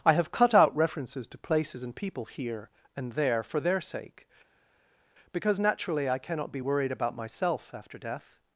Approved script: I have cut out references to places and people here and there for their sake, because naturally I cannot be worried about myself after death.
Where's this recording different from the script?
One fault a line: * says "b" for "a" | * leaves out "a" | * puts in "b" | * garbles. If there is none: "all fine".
all fine